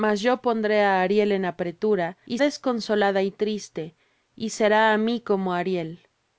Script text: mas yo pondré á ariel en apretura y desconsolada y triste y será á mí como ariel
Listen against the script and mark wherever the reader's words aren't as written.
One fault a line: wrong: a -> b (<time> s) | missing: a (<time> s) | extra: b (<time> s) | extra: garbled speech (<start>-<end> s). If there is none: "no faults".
no faults